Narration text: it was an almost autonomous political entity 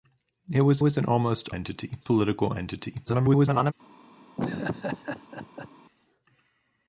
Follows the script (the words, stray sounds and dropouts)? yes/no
no